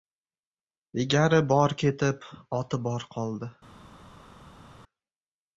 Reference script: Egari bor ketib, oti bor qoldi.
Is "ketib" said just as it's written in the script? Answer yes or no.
yes